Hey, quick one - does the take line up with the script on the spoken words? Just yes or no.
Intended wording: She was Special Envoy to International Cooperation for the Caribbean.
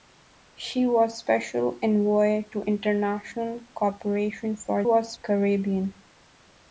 no